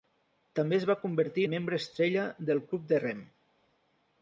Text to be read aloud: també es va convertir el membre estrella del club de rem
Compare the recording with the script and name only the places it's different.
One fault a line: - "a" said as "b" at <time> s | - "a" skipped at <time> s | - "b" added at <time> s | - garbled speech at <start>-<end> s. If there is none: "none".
none